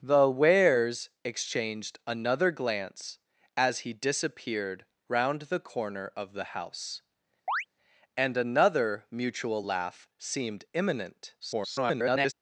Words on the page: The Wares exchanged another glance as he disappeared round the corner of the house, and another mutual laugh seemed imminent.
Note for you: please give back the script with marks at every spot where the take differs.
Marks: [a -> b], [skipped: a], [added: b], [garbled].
The Wares exchanged another glance as he disappeared round the corner of the house, and another mutual laugh seemed imminent. [garbled]